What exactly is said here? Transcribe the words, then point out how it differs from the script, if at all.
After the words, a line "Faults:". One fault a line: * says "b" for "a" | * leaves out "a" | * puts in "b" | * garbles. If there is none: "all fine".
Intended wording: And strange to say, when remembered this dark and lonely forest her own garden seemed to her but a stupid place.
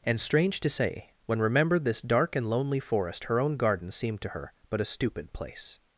And strange to say, when remembered this dark and lonely forest her own garden seemed to her but a stupid place.
Faults:
all fine